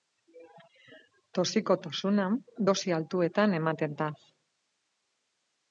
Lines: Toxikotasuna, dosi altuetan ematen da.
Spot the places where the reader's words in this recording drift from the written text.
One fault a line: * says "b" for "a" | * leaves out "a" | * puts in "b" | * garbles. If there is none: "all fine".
all fine